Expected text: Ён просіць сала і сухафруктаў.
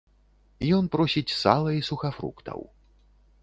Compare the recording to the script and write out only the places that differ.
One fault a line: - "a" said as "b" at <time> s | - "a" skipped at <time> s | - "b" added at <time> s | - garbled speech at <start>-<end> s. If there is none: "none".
none